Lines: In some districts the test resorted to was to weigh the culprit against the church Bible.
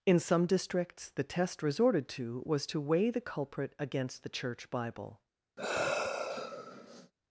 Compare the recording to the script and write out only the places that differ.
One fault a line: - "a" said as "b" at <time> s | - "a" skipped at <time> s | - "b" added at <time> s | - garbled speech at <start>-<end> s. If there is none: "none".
none